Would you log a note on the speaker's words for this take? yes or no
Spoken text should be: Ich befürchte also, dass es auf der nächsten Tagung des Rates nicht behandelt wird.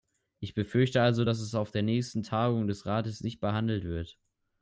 no